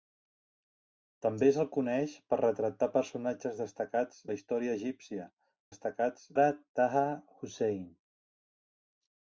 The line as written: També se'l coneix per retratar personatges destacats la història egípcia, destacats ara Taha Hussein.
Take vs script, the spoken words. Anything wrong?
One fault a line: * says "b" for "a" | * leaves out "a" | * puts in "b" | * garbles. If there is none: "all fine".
all fine